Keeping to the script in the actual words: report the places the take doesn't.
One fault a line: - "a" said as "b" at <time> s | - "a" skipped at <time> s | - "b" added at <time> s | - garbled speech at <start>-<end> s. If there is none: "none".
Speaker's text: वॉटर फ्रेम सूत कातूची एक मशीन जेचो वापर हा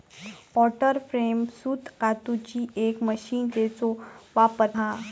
none